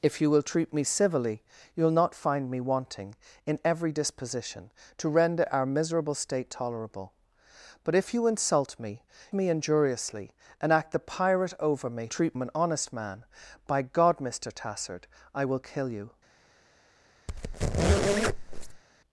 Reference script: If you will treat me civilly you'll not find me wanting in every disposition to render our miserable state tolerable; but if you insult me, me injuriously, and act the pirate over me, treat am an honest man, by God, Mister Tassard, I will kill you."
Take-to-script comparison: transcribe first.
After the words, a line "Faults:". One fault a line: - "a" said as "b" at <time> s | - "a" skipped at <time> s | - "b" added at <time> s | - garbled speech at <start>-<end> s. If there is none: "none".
If you will treat me civilly you'll not find me wanting in every disposition to render our miserable state tolerable; but if you insult me, me injuriously, and act the pirate over me, treat am an honest man, by God, Mister Tassard, I will kill you."
Faults:
none